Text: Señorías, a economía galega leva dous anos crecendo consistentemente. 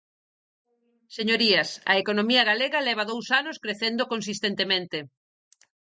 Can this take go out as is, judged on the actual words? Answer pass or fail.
pass